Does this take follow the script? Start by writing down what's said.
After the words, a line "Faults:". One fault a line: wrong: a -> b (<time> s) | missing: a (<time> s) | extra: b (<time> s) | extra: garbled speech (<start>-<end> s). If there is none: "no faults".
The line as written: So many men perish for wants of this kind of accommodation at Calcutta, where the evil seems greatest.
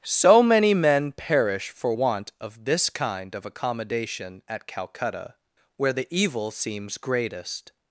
So many men perish for want of this kind of accommodation at Calcutta, where the evil seems greatest.
Faults:
wrong: wants -> want (1.9 s)